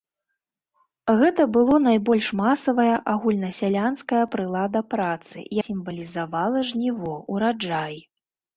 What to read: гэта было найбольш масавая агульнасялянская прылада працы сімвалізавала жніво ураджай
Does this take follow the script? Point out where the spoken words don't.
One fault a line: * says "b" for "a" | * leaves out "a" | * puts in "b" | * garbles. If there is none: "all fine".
all fine